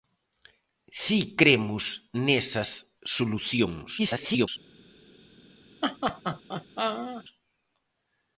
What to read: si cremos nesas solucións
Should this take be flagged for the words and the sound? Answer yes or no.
yes